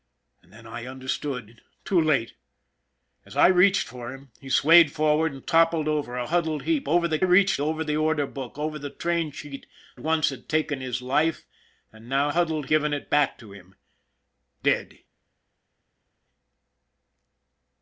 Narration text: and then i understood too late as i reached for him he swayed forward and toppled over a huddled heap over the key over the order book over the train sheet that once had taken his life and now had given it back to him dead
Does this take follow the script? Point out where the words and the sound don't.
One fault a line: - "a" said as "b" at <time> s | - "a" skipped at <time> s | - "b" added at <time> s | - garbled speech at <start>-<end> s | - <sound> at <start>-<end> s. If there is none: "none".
- "key" said as "reached" at 7.2 s
- "that" skipped at 9.7 s
- "had" said as "huddled" at 12.3 s